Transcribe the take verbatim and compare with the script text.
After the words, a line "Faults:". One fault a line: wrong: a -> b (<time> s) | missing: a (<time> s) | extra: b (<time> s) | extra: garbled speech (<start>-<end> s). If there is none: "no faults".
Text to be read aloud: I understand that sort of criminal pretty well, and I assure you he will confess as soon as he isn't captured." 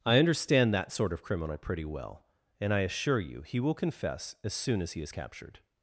I understand that sort of criminal pretty well, and I assure you he will confess as soon as he is captured."
Faults:
wrong: isn't -> is (5.0 s)